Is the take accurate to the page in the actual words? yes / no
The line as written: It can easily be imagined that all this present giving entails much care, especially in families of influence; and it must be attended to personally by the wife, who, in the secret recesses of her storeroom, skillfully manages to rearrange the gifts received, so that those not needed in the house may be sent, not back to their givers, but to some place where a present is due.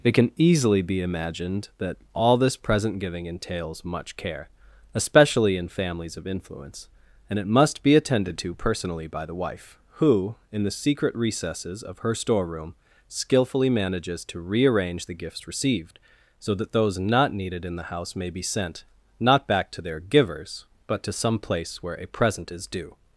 yes